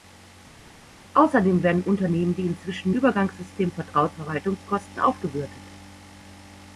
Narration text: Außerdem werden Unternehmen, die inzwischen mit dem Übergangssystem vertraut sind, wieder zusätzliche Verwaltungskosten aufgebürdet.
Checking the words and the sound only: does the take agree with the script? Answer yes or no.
no